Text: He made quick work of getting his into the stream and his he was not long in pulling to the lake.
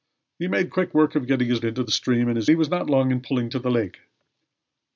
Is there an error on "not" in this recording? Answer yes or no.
no